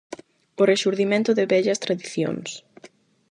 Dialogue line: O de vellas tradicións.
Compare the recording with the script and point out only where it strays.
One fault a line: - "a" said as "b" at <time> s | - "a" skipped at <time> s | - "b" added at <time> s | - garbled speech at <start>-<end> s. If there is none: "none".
- "rexurdimento" added at 0.7 s